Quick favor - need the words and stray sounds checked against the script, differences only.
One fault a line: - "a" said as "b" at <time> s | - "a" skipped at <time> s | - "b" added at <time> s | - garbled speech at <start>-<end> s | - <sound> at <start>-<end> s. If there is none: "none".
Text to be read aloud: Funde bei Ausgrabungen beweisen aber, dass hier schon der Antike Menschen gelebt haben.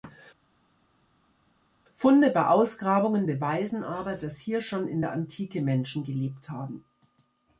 - "in" added at 4.9 s